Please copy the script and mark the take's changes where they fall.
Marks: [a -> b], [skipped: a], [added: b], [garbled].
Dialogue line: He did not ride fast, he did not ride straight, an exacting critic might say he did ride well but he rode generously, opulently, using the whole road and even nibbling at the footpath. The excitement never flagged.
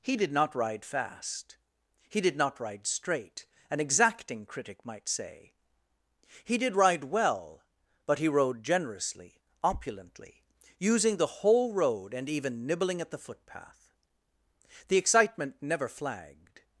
He did not ride fast, he did not ride straight, an exacting critic might say he did ride well but he rode generously, opulently, using the whole road and even nibbling at the footpath. The excitement never flagged.